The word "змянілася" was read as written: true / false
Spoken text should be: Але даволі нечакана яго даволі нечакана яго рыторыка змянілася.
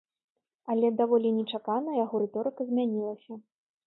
true